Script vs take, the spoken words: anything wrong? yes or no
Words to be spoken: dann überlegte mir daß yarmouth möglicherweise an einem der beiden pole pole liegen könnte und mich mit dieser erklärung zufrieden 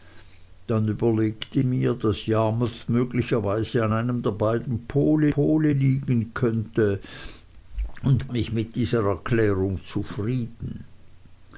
no